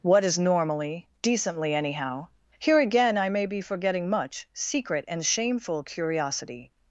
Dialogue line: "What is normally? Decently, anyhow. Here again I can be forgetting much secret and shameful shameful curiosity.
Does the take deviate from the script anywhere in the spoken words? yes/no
yes